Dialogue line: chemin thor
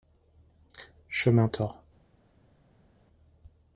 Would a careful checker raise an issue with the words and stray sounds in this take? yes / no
no